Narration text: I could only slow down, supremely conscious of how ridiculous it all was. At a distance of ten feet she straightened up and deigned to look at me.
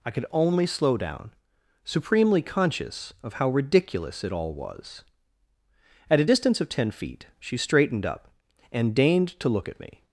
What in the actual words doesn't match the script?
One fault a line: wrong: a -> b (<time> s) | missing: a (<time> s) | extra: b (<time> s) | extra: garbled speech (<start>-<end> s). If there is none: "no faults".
no faults